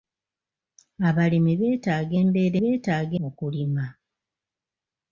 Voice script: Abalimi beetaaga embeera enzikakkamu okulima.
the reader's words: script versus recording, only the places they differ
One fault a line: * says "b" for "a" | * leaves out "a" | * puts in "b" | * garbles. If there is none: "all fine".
* says "beetaaga" for "enzikakkamu"